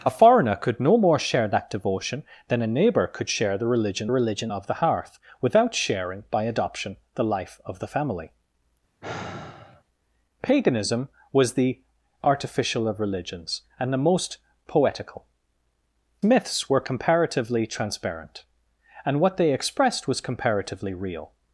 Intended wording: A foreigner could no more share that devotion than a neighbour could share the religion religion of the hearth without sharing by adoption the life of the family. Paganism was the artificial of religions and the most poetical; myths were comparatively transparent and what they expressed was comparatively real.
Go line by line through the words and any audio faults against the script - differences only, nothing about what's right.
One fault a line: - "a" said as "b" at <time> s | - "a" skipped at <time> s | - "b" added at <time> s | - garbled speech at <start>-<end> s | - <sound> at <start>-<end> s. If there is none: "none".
- sigh at 9.0-9.8 s